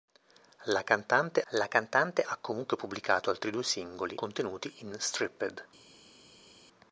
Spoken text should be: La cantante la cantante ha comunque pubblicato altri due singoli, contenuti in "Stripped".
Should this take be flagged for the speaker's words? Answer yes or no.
no